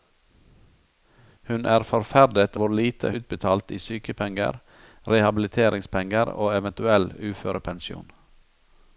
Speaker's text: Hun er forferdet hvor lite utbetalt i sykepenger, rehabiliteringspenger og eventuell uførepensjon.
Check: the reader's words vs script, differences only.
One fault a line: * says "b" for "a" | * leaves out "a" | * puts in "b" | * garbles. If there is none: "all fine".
all fine